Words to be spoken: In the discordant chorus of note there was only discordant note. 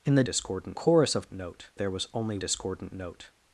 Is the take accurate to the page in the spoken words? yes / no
yes